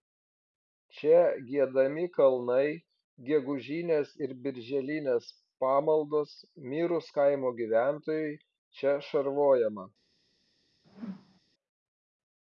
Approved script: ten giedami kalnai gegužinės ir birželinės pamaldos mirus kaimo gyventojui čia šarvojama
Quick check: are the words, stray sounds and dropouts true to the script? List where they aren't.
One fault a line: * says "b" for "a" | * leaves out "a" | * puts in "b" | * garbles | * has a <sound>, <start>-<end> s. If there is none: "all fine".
* says "čia" for "ten"
* has a whoosh, 10.8-11.4 s